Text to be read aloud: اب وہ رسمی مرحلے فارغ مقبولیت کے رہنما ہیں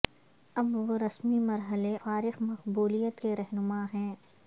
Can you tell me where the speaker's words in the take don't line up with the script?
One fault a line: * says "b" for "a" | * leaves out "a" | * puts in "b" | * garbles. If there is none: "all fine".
all fine